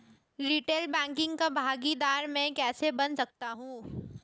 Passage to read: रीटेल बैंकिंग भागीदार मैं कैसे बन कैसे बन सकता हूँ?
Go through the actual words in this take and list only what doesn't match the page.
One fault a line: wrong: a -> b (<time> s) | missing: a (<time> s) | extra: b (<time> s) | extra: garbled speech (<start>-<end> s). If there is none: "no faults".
extra: का (1.4 s)
missing: कैसे बन (3.2 s)